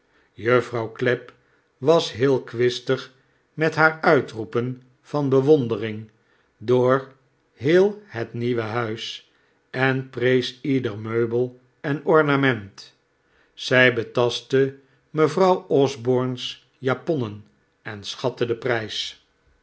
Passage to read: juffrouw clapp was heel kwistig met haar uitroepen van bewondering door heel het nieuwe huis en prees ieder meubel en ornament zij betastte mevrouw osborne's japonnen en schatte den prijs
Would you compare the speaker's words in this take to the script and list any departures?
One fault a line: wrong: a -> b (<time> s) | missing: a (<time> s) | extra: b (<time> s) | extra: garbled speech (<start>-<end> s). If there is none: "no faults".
no faults